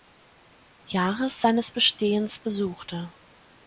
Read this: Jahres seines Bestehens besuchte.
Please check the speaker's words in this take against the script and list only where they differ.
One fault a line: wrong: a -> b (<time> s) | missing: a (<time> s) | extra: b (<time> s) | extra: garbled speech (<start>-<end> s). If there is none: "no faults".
no faults